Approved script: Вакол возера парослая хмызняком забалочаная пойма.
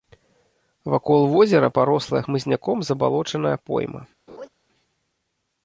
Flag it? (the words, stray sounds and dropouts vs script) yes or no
yes